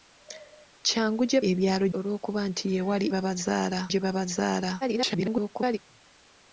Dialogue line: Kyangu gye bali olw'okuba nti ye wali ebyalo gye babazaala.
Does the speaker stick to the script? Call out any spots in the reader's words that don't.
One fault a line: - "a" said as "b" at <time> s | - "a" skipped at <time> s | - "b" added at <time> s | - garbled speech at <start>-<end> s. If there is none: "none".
- "bali" said as "ebyalo" at 1.5 s
- "ebyalo" said as "babazaala" at 3.1 s
- garbled speech at 4.8-5.8 s